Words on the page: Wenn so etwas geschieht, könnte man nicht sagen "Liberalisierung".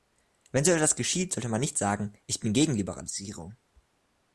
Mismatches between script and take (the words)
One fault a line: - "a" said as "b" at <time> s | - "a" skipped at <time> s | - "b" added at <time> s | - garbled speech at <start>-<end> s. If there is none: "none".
- "könnte" said as "sollte" at 1.3 s
- "Ich bin gegen" added at 2.3 s